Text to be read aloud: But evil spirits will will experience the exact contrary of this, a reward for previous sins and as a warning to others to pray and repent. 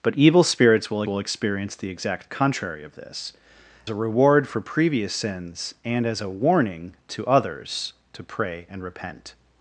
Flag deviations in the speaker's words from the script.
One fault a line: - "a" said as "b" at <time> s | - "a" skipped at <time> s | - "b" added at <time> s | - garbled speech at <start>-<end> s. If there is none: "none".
none